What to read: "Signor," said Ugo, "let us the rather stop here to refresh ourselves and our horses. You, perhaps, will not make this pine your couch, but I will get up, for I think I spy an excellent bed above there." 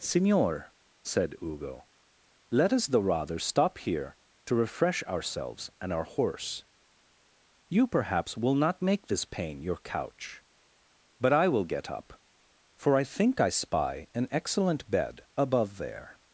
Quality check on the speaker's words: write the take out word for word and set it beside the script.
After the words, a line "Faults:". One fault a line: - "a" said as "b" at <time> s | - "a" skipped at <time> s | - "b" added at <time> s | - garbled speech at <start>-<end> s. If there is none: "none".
"Signor," said Ugo, "let us the rather stop here to refresh ourselves and our horse. You, perhaps, will not make this pain your couch, but I will get up, for I think I spy an excellent bed above there."
Faults:
- "horses" said as "horse" at 6.0 s
- "pine" said as "pain" at 9.2 s